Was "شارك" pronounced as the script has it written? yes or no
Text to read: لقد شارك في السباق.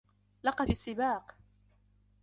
no